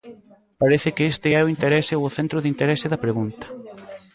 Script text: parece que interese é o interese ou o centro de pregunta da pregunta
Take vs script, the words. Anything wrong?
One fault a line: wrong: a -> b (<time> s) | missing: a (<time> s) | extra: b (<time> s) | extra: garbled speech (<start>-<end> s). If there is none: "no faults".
wrong: interese -> este (1.1 s)
wrong: pregunta -> interese (2.5 s)